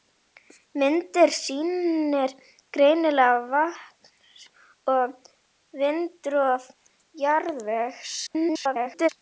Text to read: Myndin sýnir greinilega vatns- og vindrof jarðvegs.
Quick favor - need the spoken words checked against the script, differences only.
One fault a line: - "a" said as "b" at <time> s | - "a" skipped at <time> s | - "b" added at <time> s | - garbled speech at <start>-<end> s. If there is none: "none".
- garbled speech at 8.3-9.1 s